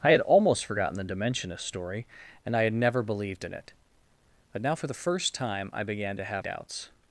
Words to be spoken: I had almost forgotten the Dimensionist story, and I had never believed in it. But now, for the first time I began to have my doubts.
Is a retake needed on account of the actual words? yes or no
yes